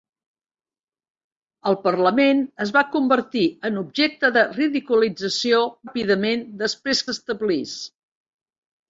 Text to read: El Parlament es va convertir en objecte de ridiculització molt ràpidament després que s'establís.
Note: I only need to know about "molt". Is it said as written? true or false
false